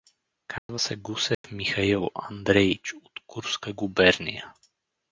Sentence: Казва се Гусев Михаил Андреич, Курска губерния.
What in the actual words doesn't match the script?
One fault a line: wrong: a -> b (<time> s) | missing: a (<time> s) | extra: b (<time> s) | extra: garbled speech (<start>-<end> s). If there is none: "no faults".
extra: от (2.9 s)